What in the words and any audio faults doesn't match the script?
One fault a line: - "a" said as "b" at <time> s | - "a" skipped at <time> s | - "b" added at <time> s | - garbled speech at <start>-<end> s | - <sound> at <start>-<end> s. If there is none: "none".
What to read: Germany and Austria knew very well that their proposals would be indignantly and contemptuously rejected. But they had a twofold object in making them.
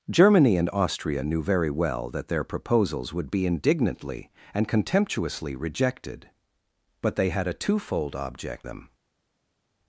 - "in making" skipped at 8.7 s